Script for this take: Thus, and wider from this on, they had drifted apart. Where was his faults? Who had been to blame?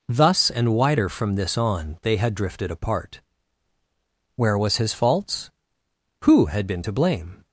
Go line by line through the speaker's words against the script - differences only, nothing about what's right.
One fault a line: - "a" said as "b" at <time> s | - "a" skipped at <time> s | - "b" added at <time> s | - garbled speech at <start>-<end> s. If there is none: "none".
none